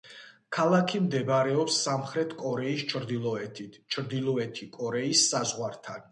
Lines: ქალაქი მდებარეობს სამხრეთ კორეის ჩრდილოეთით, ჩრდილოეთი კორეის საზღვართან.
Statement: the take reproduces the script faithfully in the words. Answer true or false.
true